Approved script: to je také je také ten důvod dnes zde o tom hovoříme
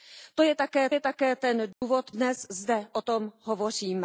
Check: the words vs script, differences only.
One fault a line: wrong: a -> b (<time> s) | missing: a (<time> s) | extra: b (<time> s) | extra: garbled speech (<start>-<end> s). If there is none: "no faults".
no faults